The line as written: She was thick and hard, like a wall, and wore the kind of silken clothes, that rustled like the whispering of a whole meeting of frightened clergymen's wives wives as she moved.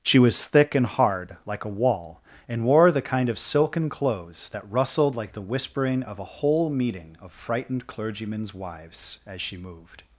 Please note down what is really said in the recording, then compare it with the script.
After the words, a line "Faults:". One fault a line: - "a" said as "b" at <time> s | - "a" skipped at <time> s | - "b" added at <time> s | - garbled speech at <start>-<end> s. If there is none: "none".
She was thick and hard, like a wall, and wore the kind of silken clothes, that rustled like the whispering of a whole meeting of frightened clergymen's wives as she moved.
Faults:
- "wives" skipped at 9.2 s